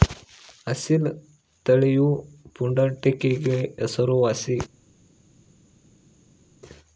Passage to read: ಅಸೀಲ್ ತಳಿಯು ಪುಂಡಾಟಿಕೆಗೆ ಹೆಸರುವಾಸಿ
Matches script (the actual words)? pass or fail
pass